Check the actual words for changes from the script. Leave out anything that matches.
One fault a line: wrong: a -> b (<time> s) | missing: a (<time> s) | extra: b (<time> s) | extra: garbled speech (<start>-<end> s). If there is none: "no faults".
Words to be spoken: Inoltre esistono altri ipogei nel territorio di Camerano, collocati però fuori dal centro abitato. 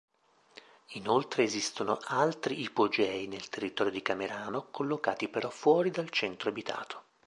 no faults